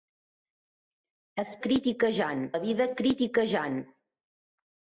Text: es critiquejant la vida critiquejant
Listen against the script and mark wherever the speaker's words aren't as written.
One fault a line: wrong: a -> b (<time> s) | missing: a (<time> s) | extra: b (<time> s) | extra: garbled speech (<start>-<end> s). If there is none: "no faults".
no faults